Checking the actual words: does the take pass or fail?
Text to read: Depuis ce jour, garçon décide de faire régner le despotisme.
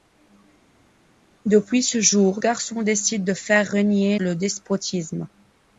pass